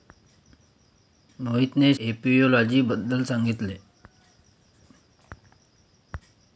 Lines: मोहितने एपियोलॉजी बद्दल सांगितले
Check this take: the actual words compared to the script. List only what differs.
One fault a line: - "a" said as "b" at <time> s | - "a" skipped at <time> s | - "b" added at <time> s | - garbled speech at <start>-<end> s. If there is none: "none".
none